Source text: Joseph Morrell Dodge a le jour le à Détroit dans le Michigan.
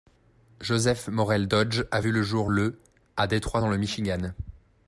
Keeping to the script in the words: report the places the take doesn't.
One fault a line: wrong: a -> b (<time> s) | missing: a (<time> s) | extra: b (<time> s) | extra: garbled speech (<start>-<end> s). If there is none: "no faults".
extra: vu (2.0 s)